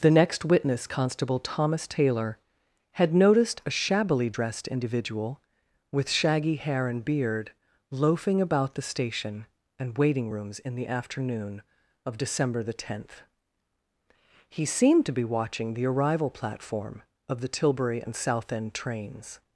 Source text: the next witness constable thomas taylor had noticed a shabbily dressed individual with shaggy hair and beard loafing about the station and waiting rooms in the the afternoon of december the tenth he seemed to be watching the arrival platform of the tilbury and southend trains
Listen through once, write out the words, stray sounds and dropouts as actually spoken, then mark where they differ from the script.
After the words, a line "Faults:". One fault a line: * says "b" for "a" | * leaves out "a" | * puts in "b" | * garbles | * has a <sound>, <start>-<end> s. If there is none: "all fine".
the next witness constable thomas taylor had noticed a shabbily dressed individual with shaggy hair and beard loafing about the station and waiting rooms in the afternoon of december the tenth he seemed to be watching the arrival platform of the tilbury and southend trains
Faults:
* leaves out "the"